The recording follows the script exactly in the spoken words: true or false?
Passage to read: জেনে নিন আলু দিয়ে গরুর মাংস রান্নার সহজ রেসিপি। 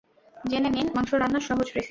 false